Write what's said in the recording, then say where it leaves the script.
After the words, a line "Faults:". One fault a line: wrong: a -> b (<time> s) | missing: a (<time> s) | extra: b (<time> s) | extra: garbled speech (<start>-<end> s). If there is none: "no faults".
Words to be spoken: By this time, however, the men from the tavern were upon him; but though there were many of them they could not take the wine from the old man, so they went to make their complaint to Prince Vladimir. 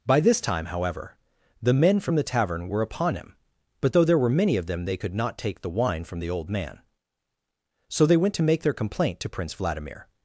By this time, however, the men from the tavern were upon him; but though there were many of them they could not take the wine from the old man, so they went to make their complaint to Prince Vladimir.
Faults:
no faults